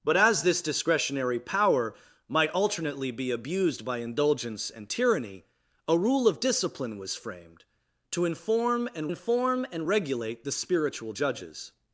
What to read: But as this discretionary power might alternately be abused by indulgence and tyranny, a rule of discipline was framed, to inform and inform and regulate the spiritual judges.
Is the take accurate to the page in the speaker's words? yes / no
yes